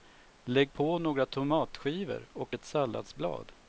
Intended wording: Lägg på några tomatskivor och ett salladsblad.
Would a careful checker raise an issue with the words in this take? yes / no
no